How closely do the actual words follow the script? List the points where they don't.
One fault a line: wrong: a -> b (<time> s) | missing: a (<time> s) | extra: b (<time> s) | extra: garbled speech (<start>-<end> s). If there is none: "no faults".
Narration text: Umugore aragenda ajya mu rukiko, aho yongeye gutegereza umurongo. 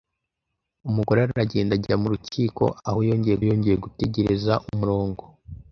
extra: yongeye (3.5 s)